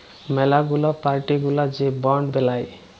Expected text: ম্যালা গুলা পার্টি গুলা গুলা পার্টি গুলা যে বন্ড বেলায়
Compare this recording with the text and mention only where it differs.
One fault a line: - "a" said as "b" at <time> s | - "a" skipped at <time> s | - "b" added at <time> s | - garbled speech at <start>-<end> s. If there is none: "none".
- "গুলা পার্টি গুলা" skipped at 1.6 s